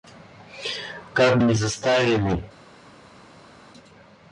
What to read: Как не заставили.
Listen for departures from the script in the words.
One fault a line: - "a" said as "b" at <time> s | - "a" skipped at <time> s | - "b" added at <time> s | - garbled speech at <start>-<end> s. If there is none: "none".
none